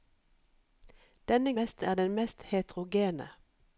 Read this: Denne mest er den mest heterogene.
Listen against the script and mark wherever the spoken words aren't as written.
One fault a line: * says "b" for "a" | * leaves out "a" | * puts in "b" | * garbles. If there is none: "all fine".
all fine